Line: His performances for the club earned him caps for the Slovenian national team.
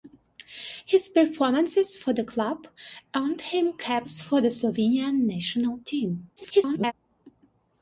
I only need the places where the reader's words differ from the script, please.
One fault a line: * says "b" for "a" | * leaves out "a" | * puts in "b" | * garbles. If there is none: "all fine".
* garbles